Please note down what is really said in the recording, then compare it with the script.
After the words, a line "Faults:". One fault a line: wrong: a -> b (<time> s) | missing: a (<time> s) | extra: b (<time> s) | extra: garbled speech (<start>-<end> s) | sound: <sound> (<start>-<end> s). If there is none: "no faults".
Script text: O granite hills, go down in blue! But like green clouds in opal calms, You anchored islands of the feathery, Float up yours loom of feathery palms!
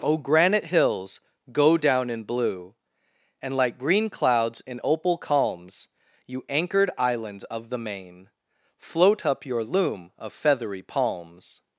O granite hills, go down in blue! And like green clouds in opal calms, You anchored islands of the main, Float up your loom of feathery palms!
Faults:
wrong: But -> And (3.4 s)
wrong: feathery -> main (7.8 s)
wrong: yours -> your (9.4 s)